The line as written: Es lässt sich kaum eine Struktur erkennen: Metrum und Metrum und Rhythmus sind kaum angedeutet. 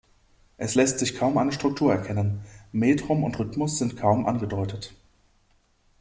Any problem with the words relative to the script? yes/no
yes